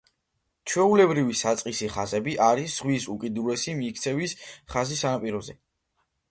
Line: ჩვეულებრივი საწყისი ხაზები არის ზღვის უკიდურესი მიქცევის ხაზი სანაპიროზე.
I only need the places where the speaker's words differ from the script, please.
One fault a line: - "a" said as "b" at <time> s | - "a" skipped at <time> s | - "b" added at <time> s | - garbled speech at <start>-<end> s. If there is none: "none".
none